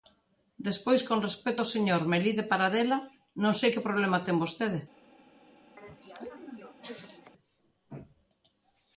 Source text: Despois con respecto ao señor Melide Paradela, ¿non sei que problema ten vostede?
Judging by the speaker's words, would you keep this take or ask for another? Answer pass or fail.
pass